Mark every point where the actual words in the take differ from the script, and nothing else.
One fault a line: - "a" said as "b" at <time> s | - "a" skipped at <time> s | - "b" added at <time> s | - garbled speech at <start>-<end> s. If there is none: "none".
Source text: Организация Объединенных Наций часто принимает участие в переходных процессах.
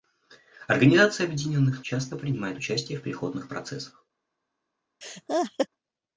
- "Наций" skipped at 1.8 s